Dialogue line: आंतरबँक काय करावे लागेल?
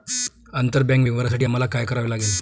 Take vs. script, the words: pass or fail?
fail